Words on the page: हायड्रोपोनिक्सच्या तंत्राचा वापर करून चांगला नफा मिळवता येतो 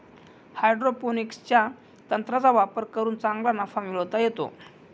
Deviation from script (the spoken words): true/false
false